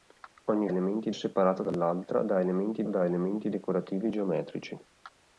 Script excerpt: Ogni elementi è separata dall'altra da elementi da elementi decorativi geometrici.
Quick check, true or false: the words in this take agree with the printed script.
true